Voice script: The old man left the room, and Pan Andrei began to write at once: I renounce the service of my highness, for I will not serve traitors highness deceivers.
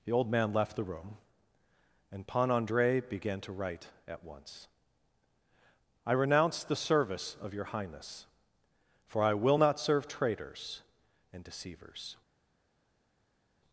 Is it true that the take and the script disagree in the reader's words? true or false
true